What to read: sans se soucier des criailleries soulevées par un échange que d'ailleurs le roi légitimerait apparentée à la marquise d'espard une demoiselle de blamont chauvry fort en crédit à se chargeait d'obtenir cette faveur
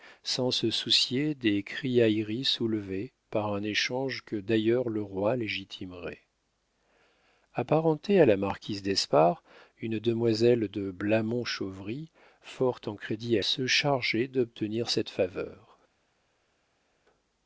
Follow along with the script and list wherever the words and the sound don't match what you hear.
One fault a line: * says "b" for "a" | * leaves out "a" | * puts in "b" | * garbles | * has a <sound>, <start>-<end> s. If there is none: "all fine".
all fine